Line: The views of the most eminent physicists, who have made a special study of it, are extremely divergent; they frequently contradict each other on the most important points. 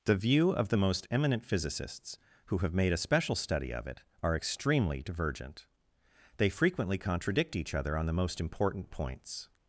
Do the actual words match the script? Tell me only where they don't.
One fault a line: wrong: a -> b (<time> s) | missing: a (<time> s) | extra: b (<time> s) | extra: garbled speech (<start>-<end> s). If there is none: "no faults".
wrong: views -> view (0.1 s)